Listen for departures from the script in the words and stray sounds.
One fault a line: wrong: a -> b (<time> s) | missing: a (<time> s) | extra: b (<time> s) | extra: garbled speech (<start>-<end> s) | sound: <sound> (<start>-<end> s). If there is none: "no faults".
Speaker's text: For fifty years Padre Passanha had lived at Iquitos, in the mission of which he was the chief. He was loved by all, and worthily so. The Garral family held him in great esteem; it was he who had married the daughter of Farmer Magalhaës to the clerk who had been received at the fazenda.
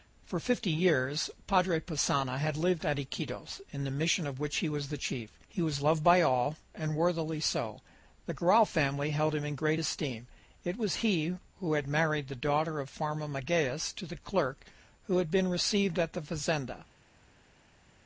no faults